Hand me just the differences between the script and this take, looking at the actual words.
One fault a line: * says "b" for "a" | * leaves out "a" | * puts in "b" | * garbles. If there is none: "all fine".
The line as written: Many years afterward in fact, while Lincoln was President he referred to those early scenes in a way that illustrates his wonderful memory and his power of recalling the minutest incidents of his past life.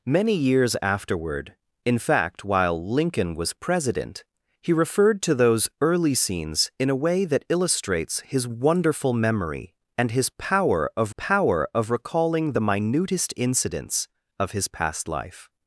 * puts in "power of"